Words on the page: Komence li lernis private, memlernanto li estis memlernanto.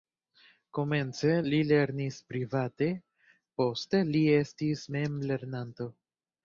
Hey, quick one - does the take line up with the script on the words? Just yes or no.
no